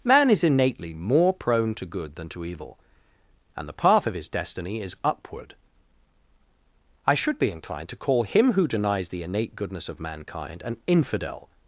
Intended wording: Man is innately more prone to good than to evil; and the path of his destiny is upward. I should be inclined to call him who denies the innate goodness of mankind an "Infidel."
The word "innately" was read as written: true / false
true